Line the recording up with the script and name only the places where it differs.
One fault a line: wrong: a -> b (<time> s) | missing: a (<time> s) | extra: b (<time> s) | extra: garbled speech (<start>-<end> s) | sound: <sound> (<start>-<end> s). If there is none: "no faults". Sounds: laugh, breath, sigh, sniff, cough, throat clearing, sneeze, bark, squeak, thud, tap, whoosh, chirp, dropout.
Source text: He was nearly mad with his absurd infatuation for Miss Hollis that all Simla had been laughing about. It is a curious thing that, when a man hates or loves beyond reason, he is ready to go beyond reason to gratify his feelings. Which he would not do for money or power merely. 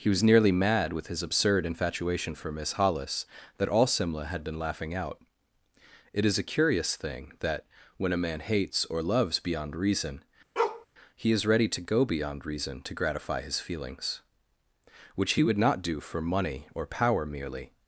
wrong: about -> out (5.0 s)
sound: bark (10.6-10.9 s)